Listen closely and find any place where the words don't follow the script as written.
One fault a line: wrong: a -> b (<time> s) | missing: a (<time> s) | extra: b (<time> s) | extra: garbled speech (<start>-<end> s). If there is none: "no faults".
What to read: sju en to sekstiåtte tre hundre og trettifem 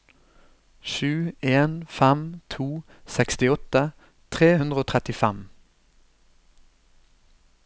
extra: fem (2.0 s)